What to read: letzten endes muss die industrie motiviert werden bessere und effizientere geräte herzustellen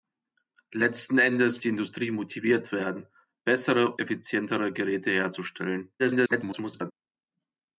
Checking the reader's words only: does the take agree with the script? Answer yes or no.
no